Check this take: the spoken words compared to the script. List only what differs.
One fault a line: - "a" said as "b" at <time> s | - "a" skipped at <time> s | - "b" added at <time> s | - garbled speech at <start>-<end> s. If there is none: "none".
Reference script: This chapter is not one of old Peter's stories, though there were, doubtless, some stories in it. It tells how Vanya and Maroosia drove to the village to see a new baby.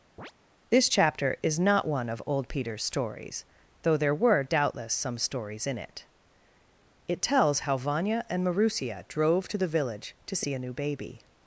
none